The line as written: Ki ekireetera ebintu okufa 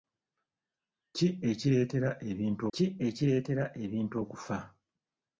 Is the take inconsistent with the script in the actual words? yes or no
yes